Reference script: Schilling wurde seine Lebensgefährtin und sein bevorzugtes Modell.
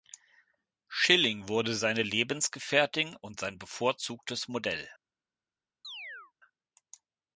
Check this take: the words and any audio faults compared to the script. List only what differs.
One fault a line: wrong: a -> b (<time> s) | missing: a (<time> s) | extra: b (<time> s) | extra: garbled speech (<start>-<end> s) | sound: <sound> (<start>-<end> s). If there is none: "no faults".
sound: chirp (5.8-6.3 s)